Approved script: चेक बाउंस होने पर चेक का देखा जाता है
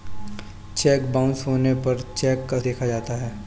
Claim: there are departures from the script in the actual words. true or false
false